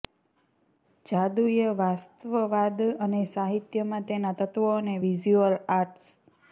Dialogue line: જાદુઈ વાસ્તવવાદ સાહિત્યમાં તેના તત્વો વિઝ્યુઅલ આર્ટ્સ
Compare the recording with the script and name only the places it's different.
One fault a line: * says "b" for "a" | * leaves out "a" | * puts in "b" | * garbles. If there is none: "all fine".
* puts in "અને"
* puts in "અને"